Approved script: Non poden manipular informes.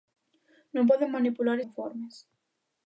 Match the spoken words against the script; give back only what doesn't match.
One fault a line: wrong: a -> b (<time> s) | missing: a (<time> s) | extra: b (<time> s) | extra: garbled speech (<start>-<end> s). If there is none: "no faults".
no faults